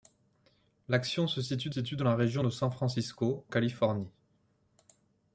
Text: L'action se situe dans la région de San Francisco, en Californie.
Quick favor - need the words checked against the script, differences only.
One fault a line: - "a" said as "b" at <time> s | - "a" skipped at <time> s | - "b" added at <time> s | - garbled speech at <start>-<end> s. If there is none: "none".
- "situe" added at 1.7 s
- "en" skipped at 3.4 s